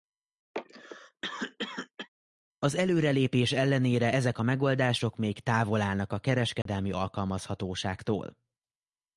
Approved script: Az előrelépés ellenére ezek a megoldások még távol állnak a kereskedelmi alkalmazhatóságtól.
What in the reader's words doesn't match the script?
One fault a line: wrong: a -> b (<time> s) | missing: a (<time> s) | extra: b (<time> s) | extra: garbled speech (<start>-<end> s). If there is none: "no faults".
no faults